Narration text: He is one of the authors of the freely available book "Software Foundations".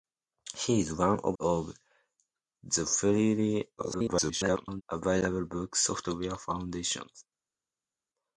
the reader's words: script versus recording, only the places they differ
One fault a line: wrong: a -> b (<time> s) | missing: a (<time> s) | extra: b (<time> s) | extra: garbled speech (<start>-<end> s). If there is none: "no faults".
missing: the authors (1.4 s)
extra: garbled speech (3.8-4.8 s)